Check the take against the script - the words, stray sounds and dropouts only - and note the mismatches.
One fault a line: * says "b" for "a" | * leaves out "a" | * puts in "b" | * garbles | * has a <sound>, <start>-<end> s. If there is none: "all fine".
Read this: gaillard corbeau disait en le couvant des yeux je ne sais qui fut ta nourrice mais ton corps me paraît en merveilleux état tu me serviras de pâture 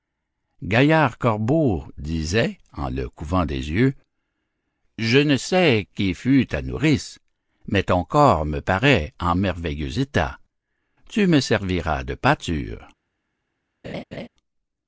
* has a laugh, 13.8-14.3 s